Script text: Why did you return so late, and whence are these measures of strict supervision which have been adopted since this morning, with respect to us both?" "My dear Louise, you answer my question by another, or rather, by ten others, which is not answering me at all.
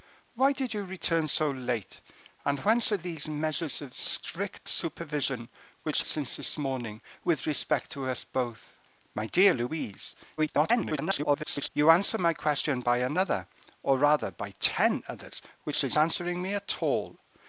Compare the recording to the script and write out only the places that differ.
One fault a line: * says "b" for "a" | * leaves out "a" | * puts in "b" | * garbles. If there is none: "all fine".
* leaves out "have been adopted"
* garbles
* leaves out "not"